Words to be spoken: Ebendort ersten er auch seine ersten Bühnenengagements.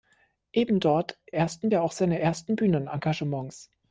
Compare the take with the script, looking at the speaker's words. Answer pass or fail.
pass